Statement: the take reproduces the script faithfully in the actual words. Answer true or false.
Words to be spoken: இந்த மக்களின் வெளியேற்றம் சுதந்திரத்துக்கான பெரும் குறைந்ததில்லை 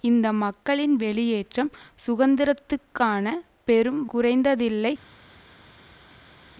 true